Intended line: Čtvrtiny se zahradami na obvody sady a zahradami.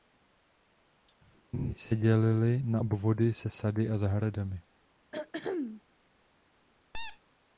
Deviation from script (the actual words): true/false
true